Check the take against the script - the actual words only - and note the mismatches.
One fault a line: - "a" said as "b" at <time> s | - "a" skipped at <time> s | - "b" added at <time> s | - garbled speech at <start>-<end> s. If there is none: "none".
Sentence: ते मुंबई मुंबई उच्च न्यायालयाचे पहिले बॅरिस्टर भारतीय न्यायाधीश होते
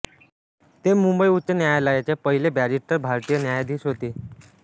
- "मुंबई" skipped at 1.3 s